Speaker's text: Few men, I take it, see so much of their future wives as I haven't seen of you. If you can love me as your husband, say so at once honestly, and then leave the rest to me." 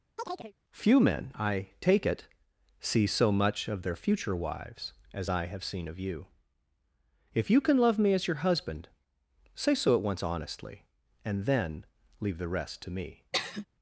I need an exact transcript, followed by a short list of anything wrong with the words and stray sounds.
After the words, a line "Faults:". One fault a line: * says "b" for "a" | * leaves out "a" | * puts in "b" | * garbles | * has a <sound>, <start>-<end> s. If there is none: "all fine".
Few men, I take it, see so much of their future wives as I have seen of you. If you can love me as your husband, say so at once honestly, and then leave the rest to me."
Faults:
* has a chirp, 0.2-0.5 s
* says "have" for "haven't"
* has a sigh, 13.3-13.7 s